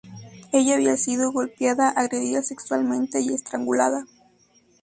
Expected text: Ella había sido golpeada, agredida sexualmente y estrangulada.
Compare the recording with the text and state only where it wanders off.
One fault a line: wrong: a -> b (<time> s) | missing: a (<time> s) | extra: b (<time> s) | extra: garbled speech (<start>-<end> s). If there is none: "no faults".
no faults